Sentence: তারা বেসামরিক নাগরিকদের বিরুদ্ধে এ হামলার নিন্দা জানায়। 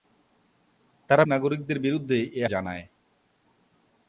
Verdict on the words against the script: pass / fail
fail